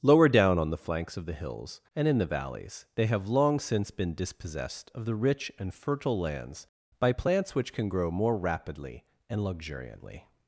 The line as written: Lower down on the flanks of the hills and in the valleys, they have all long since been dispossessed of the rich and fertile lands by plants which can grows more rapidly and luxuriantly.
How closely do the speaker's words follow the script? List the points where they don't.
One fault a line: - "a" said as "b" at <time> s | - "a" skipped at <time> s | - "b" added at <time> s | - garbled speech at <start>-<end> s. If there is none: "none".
- "all" skipped at 3.3 s
- "grows" said as "grow" at 7.9 s